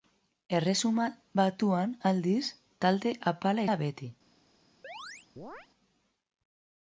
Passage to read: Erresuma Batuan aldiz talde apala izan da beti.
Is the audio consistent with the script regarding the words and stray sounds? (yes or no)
no